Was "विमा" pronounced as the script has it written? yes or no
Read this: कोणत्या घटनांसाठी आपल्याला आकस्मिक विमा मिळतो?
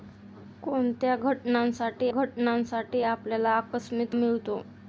no